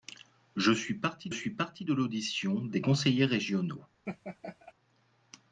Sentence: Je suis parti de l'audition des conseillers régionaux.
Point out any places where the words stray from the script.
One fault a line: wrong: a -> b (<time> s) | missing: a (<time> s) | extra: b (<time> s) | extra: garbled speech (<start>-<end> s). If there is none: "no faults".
extra: suis parti (1.3 s)